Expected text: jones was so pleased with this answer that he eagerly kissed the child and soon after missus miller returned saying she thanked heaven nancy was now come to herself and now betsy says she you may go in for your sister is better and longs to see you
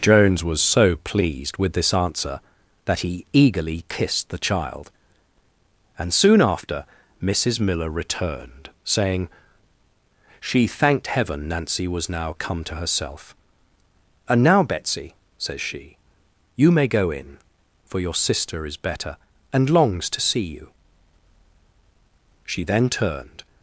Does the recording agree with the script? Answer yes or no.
no